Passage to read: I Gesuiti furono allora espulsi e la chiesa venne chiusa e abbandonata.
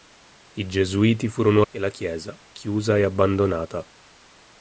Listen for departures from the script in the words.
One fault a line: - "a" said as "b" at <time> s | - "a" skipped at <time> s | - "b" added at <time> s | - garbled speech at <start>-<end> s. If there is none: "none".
- "allora espulsi" skipped at 1.6 s
- "venne" skipped at 2.4 s